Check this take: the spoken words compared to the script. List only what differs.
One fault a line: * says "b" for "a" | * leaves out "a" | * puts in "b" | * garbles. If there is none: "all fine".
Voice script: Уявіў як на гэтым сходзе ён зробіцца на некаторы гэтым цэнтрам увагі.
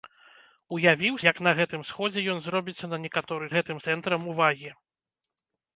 all fine